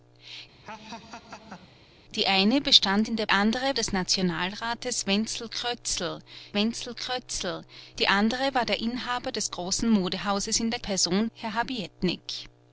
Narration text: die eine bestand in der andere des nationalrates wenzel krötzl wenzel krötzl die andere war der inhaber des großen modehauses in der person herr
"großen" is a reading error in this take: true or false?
false